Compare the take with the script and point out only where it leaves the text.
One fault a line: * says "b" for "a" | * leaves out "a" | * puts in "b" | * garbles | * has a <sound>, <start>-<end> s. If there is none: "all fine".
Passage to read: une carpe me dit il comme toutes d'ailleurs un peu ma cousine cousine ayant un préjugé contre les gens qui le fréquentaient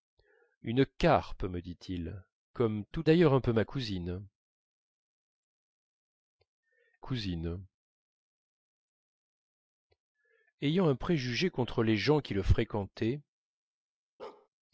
* has a bark, 14.2-14.5 s